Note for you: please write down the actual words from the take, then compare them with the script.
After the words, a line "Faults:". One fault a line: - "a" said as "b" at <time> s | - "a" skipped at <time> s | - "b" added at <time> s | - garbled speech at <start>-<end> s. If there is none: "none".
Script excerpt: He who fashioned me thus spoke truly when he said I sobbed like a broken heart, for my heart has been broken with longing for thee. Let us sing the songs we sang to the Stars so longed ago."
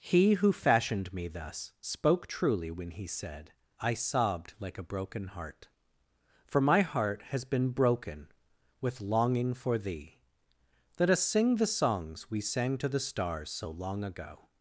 He who fashioned me thus spoke truly when he said I sobbed like a broken heart, for my heart has been broken with longing for thee. Let us sing the songs we sang to the Stars so long ago."
Faults:
- "longed" said as "long" at 13.7 s